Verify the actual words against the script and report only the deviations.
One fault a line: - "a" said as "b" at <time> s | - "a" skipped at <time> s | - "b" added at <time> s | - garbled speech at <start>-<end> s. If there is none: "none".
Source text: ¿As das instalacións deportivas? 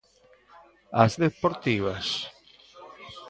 - "das instalacións" skipped at 1.1 s